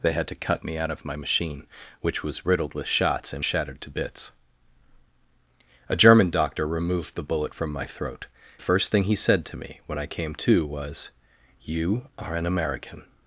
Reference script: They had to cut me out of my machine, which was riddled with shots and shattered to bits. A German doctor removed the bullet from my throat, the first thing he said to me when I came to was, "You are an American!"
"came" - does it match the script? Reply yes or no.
yes